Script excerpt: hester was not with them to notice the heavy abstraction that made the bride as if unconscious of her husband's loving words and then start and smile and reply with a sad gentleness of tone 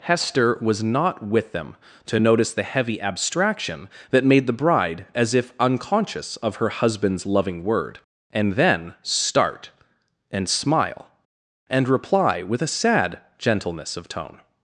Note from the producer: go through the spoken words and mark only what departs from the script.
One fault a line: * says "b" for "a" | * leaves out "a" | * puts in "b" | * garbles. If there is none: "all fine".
* says "word" for "words"